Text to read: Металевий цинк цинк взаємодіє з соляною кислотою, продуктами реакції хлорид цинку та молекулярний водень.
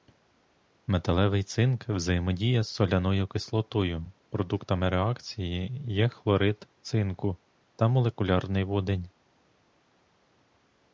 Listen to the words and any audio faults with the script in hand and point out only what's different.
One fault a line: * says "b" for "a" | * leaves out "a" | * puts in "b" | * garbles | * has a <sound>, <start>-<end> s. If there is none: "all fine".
* leaves out "цинк"
* puts in "є"